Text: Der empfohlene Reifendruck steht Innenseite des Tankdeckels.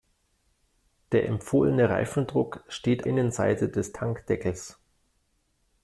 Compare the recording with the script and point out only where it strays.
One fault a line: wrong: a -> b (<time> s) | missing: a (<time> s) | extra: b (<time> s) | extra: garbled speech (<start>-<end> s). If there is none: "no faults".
no faults